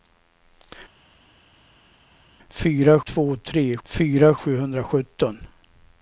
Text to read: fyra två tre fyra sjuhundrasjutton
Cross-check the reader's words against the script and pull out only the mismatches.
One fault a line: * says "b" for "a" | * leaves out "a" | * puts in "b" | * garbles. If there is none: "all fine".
all fine